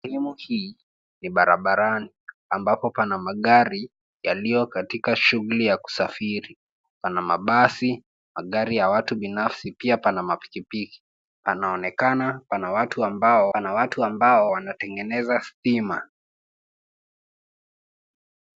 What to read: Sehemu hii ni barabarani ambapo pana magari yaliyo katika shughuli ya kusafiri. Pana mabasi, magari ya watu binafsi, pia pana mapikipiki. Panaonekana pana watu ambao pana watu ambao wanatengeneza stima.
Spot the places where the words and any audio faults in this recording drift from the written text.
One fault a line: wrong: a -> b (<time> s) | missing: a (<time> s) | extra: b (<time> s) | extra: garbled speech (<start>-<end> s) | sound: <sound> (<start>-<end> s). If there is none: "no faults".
no faults